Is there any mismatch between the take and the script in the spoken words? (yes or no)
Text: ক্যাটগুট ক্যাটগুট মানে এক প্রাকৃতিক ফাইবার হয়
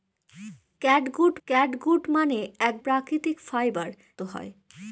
no